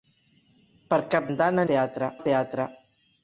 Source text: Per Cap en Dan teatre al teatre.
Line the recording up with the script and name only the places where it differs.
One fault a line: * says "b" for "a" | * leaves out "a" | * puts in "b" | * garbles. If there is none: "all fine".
all fine